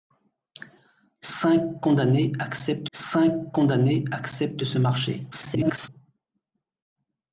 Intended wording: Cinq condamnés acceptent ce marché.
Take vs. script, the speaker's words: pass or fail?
fail